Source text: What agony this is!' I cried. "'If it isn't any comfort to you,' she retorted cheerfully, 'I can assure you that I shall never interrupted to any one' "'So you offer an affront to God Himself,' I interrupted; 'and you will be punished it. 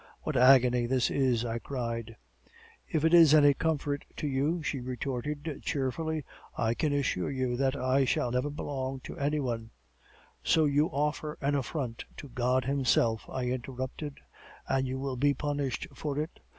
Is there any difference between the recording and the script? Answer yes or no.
yes